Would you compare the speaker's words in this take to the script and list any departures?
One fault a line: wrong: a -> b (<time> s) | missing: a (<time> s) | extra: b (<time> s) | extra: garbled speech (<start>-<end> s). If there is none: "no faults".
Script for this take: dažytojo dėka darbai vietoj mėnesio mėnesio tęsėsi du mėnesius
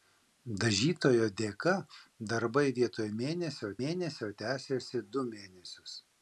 no faults